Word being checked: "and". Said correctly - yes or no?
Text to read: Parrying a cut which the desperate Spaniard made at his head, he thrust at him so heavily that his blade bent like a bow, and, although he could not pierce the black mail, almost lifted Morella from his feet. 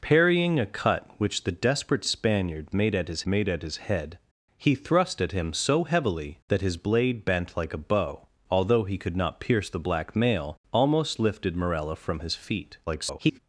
no